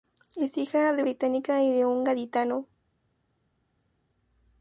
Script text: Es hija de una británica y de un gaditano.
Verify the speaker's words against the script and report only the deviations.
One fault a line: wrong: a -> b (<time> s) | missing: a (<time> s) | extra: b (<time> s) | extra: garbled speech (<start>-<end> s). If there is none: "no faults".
missing: una (1.0 s)